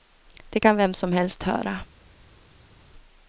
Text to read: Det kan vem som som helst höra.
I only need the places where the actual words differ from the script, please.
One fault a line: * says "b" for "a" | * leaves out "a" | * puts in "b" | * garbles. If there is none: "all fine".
* leaves out "som"